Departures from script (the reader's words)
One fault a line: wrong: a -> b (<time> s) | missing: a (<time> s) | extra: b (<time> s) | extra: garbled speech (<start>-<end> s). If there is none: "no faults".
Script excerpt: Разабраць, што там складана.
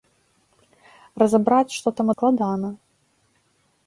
no faults